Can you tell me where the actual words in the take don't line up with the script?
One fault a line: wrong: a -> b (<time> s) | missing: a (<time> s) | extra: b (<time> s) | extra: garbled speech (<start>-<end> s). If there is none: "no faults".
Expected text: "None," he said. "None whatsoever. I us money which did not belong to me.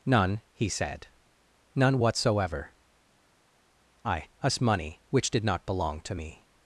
no faults